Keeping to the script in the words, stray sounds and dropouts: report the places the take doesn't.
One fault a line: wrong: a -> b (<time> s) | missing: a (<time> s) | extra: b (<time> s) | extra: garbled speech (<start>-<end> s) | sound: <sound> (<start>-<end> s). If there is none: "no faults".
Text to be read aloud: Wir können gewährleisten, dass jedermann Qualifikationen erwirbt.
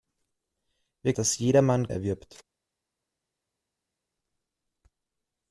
missing: können gewährleisten (1.1 s)
missing: Qualifikationen (1.9 s)